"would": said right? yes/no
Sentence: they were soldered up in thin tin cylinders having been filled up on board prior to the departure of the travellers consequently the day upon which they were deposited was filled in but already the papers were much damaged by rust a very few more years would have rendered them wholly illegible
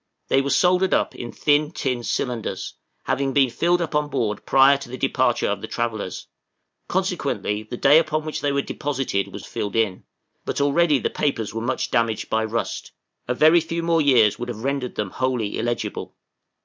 yes